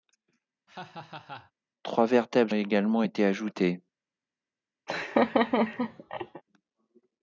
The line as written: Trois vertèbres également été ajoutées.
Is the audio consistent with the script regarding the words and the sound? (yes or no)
no